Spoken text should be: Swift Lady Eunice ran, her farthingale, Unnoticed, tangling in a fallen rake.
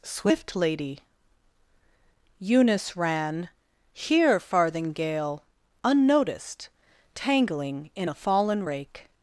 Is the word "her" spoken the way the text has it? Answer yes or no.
no